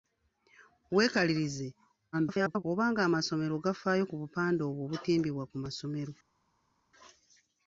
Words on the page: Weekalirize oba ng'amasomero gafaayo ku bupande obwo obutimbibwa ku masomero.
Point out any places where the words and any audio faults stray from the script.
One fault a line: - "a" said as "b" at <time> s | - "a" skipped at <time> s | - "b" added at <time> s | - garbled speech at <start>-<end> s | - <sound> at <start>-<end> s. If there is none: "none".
- garbled speech at 2.1-2.6 s